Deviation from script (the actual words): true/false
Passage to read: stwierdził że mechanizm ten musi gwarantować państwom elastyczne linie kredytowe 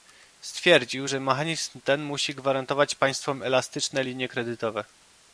false